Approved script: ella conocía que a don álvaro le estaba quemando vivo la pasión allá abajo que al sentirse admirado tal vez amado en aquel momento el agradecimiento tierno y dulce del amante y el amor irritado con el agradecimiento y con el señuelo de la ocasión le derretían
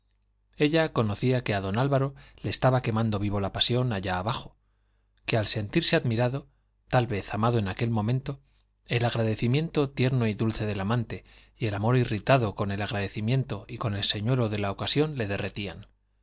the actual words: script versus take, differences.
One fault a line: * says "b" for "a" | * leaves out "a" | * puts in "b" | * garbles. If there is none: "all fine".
all fine